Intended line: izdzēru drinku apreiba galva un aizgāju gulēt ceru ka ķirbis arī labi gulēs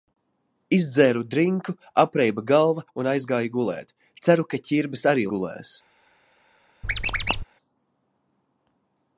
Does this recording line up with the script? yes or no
no